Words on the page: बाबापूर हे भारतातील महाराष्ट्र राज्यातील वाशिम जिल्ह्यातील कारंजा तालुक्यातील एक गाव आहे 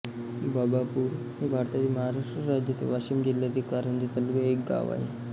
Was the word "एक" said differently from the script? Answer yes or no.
no